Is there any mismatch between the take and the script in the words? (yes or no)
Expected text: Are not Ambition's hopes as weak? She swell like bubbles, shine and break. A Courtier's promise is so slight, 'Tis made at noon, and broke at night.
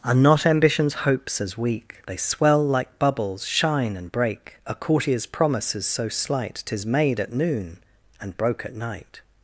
yes